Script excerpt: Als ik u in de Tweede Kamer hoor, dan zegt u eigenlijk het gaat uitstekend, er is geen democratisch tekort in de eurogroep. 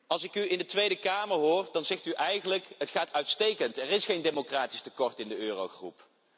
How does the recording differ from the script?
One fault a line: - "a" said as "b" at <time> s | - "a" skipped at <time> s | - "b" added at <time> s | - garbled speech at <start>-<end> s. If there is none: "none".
none